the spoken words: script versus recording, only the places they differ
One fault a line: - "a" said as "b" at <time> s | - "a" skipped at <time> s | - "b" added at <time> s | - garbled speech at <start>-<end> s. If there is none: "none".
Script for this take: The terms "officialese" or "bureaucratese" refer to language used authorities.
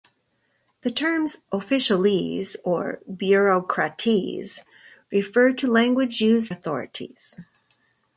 none